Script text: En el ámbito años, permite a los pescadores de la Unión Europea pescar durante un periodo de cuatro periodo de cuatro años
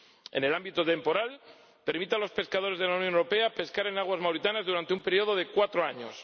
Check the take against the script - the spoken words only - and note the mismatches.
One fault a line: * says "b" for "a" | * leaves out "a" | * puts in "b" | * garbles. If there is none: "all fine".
* says "temporal" for "años"
* says "en aguas mauritanas durante un" for "durante un periodo de cuatro"